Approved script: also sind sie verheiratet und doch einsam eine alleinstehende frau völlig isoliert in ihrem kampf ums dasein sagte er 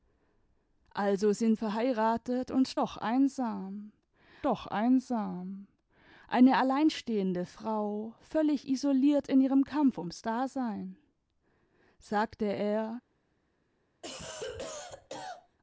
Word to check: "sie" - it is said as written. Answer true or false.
false